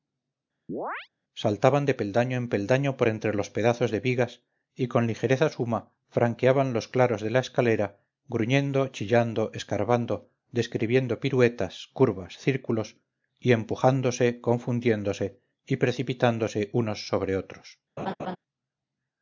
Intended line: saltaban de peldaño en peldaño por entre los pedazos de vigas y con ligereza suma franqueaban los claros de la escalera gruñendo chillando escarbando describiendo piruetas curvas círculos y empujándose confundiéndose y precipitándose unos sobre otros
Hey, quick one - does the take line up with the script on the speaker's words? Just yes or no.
yes